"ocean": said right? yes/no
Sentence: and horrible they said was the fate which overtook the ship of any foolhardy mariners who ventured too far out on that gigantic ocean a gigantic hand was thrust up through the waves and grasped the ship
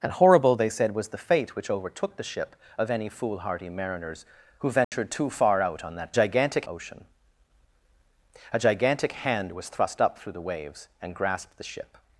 yes